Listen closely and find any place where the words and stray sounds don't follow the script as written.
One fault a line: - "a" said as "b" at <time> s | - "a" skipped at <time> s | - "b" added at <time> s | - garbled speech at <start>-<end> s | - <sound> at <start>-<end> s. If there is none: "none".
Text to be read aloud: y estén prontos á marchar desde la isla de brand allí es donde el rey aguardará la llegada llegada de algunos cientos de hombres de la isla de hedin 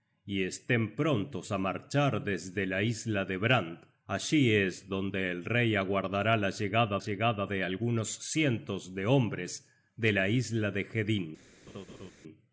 - laugh at 11.7-12.1 s